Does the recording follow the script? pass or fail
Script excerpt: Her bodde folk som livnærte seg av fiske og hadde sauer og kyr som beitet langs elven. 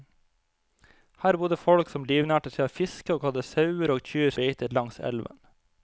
fail